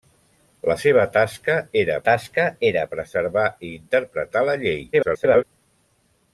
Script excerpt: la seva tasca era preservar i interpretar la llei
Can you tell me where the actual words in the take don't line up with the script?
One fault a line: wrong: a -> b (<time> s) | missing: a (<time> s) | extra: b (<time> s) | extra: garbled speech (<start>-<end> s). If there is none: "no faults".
extra: tasca era (2.1 s)
extra: garbled speech (4.9-5.4 s)